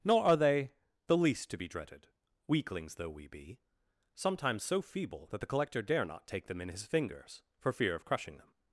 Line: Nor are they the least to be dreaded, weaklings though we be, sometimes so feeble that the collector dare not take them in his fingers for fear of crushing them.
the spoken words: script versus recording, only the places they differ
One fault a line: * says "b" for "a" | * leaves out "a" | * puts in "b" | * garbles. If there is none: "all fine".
all fine